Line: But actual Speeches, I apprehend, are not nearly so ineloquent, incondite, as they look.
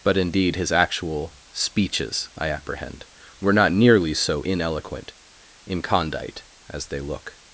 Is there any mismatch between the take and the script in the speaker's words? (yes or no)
yes